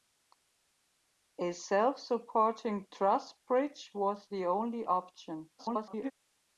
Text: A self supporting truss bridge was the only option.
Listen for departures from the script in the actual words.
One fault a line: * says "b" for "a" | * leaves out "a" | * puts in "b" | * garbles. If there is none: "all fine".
* garbles